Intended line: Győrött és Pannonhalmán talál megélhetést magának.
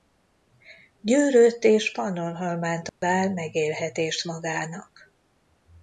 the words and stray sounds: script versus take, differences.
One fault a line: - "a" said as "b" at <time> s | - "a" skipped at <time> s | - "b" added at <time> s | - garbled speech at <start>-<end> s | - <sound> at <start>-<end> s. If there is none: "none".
- dropout at 2.9-3.0 s